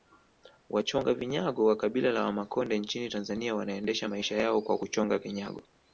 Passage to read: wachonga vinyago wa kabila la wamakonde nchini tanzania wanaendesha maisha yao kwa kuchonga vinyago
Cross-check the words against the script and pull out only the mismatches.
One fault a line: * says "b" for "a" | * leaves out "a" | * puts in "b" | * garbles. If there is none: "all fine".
all fine